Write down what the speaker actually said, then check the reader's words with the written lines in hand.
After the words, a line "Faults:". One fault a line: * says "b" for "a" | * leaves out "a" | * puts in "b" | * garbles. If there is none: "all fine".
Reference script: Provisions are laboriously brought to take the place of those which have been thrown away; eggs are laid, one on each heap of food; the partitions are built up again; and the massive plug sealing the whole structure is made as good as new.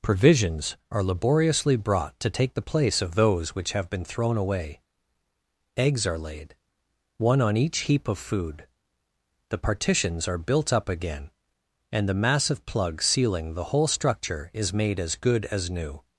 Provisions are laboriously brought to take the place of those which have been thrown away; eggs are laid, one on each heap of food; the partitions are built up again; and the massive plug sealing the whole structure is made as good as new.
Faults:
all fine